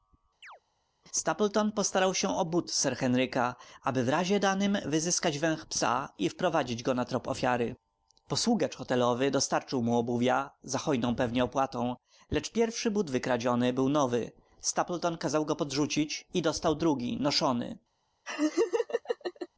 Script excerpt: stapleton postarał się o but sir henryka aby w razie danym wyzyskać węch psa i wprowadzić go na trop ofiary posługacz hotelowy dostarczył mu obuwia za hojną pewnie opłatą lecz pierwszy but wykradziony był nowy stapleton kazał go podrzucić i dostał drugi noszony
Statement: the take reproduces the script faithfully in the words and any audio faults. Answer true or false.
false